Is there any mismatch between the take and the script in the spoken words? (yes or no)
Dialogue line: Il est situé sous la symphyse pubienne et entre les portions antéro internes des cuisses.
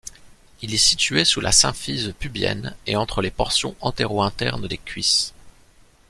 no